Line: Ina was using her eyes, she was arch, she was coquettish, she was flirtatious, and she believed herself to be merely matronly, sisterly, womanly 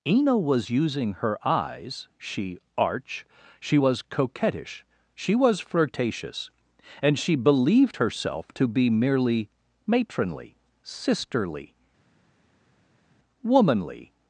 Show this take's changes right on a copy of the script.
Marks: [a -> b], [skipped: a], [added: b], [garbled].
Ina was using her eyes, she [skipped: was] arch, she was coquettish, she was flirtatious, and she believed herself to be merely matronly, sisterly, womanly